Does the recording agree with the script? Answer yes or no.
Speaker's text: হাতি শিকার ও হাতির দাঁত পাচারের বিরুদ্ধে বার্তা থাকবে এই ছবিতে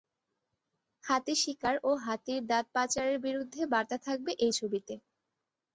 yes